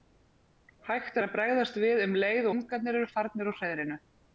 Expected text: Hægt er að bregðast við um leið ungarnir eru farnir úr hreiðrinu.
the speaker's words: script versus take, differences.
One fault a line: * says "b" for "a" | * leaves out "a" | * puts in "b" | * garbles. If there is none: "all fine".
all fine